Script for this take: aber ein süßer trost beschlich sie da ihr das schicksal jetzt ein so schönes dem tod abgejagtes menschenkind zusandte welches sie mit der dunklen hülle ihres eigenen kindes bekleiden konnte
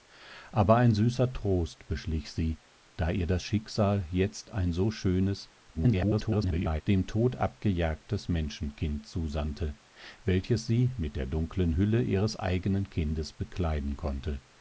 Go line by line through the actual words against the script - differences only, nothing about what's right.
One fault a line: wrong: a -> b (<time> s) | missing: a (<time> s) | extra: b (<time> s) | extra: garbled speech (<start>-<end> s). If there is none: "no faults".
extra: garbled speech (5.7-6.8 s)